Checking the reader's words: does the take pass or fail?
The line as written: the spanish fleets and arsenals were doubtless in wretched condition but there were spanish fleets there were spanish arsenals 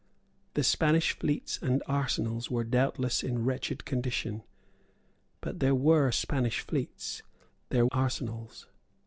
fail